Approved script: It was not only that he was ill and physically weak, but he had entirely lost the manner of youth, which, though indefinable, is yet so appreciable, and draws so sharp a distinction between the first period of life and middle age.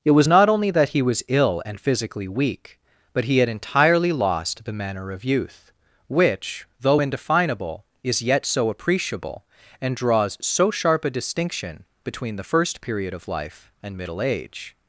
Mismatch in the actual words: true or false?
false